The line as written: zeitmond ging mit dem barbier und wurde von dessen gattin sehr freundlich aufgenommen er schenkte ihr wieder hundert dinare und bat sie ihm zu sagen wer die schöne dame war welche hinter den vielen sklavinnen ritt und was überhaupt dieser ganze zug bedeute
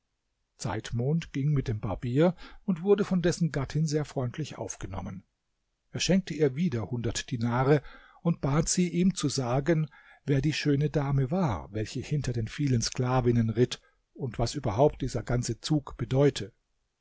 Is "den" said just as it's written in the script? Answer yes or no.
yes